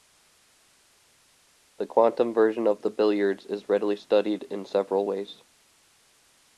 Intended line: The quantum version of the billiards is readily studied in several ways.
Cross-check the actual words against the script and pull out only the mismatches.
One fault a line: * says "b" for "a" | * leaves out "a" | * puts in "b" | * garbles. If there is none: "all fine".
all fine